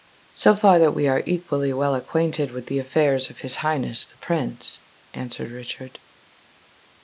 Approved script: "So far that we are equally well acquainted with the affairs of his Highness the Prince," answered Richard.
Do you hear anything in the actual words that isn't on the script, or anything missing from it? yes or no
no